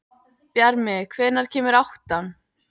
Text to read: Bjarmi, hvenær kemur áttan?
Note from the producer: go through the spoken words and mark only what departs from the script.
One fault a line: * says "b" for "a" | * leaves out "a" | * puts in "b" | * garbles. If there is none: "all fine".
all fine